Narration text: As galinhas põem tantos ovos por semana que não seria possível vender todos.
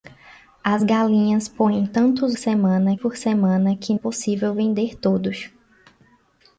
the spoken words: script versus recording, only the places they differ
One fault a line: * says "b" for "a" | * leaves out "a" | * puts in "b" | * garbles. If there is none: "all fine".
* says "semana" for "ovos"
* leaves out "não seria"